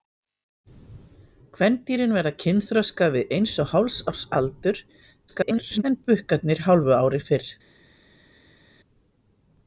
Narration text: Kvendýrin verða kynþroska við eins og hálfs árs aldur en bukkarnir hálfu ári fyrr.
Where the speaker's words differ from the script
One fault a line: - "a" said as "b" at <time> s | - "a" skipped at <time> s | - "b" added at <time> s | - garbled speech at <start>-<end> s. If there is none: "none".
- garbled speech at 5.3-5.8 s